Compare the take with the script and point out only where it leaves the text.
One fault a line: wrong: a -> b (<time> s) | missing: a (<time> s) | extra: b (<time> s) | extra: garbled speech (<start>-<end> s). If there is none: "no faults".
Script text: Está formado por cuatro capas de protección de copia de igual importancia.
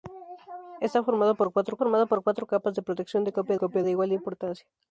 extra: formado por cuatro (1.8 s)
extra: copia (3.5 s)